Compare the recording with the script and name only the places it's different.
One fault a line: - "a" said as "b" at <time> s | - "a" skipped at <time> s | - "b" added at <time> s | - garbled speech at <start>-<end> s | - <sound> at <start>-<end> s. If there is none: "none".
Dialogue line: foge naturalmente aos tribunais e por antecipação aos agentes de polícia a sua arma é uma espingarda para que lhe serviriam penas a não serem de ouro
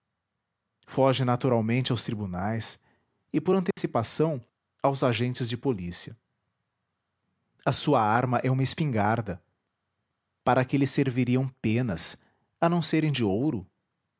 - dropout at 3.7-3.8 s